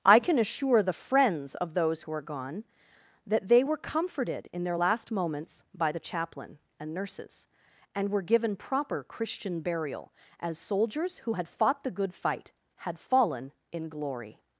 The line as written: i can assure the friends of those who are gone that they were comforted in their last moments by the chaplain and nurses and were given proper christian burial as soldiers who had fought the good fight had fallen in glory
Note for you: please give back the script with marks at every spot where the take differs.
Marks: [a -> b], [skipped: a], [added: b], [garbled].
i can assure the friends of those who are gone that they were comforted in their last moments by the chaplain and nurses and were given proper christian burial as soldiers who had fought the good fight had fallen in glory